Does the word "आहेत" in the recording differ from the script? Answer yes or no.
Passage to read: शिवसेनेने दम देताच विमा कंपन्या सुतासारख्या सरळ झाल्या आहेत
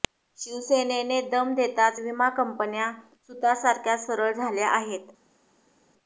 no